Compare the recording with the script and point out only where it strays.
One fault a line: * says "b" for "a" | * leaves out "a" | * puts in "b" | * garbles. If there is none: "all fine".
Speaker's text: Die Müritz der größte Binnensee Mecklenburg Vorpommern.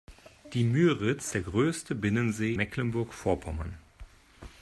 all fine